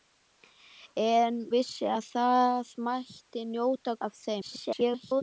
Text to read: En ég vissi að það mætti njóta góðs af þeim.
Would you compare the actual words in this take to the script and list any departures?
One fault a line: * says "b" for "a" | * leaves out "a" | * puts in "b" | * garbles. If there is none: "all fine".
* leaves out "ég"
* leaves out "góðs"
* garbles